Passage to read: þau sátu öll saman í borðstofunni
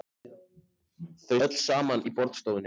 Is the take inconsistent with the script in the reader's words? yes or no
yes